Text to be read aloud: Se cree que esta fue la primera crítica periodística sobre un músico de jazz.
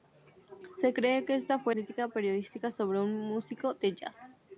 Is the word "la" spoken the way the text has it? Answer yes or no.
no